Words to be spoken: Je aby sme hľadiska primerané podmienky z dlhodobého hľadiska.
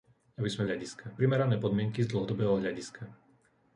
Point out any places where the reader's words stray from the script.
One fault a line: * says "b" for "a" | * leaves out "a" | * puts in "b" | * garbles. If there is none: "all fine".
all fine